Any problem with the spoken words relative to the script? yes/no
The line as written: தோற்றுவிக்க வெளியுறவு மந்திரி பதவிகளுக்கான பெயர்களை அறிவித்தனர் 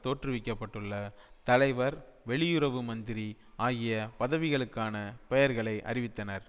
yes